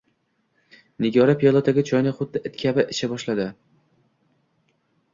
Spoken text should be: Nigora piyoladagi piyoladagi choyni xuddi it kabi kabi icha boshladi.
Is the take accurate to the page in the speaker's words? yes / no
no